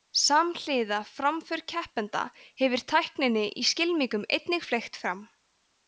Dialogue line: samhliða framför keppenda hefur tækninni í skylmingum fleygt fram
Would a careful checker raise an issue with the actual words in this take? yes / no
yes